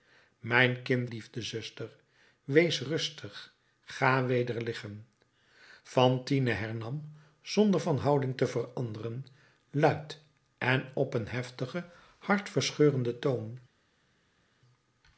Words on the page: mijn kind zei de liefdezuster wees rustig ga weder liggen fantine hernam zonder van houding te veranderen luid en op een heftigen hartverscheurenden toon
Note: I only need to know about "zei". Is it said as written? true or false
false